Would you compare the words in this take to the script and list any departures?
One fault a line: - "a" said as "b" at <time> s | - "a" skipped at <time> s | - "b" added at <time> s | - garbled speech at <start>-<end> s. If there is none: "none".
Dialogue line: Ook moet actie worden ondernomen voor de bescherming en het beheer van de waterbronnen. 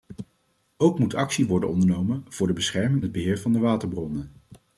- "en" skipped at 3.0 s